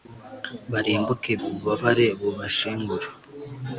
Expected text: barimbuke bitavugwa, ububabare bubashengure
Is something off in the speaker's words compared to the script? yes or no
yes